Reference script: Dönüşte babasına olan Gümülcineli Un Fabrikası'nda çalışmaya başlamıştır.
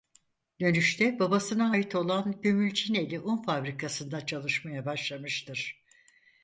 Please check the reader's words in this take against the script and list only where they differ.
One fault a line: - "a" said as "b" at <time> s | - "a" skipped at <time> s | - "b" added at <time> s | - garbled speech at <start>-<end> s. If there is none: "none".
- "ait" added at 1.7 s